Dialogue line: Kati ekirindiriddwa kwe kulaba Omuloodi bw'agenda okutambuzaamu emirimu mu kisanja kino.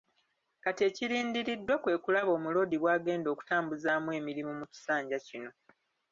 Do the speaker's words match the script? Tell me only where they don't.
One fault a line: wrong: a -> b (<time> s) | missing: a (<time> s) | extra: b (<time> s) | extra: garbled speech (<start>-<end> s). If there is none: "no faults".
no faults